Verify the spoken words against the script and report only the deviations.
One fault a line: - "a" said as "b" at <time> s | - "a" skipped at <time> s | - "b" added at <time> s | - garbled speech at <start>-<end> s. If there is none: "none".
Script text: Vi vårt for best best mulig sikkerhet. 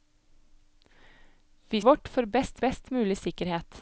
none